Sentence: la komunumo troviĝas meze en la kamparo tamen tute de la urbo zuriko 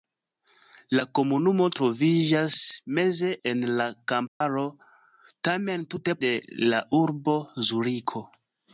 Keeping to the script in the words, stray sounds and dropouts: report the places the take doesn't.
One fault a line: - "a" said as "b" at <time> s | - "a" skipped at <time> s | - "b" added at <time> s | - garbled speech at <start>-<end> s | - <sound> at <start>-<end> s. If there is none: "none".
- dropout at 4.3-4.4 s